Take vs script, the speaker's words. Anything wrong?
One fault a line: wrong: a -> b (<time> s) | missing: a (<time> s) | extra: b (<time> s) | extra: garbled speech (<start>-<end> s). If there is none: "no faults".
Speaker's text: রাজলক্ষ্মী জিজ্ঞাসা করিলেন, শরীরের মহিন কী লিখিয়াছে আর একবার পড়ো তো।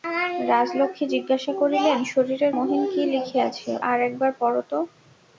no faults